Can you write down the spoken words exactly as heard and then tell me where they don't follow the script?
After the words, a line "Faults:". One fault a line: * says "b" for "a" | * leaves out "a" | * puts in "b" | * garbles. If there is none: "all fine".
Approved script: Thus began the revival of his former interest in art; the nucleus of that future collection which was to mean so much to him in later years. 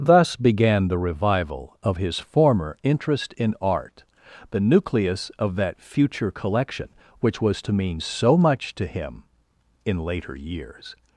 Thus began the revival of his former interest in art; the nucleus of that future collection which was to mean so much to him in later years.
Faults:
all fine